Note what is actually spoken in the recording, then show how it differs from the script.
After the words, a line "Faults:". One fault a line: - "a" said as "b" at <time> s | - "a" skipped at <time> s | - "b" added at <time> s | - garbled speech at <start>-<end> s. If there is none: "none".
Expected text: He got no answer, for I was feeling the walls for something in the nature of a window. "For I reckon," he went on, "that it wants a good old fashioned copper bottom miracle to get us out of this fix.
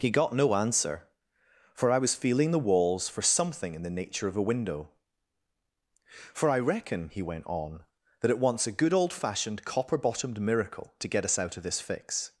He got no answer, for I was feeling the walls for something in the nature of a window. "For I reckon," he went on, "that it wants a good old fashioned copper bottomed miracle to get us out of this fix.
Faults:
- "bottom" said as "bottomed" at 10.0 s